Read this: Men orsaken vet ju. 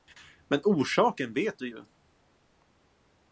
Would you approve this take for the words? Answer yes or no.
no